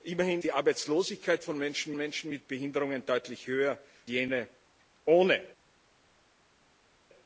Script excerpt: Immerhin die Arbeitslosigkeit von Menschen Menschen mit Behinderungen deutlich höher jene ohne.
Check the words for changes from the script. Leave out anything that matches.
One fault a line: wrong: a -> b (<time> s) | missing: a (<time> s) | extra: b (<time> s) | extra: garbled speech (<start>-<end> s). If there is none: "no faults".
no faults